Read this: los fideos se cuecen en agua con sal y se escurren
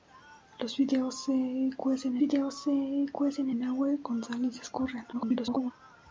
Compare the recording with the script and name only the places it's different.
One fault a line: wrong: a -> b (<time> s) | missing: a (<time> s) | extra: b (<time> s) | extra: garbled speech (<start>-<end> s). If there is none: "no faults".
extra: fideos se cuecen (2.2 s)
extra: garbled speech (5.1-5.7 s)